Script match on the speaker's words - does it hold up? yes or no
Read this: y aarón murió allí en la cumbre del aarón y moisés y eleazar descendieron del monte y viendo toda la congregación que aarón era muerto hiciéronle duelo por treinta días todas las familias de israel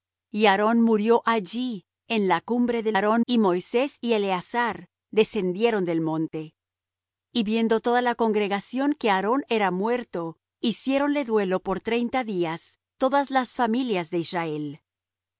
yes